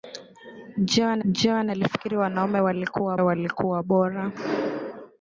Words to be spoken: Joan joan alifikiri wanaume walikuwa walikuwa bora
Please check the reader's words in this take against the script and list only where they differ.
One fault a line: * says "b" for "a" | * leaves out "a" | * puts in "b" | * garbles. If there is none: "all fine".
all fine